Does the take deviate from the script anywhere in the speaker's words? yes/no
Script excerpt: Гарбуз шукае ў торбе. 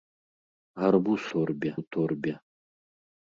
yes